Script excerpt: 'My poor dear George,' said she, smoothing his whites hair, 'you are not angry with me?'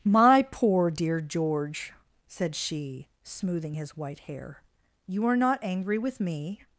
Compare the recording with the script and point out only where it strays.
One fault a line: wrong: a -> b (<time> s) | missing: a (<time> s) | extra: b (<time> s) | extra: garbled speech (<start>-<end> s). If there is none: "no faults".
wrong: whites -> white (4.0 s)